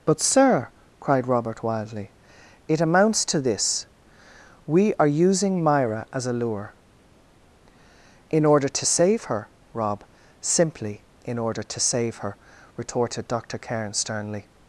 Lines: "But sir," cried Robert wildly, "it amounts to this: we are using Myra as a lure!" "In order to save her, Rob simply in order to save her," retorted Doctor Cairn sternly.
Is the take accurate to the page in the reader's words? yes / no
yes